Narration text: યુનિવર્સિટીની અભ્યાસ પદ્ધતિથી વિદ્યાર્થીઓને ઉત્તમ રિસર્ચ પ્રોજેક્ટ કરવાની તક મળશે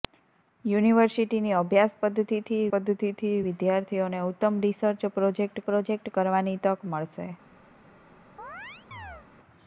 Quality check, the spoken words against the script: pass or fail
fail